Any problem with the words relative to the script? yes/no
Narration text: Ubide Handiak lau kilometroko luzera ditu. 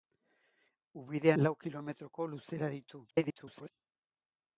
yes